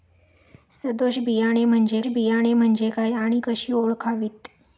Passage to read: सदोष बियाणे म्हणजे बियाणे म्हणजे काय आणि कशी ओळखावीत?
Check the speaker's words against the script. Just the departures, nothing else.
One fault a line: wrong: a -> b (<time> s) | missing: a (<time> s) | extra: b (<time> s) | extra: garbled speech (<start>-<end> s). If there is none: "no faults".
no faults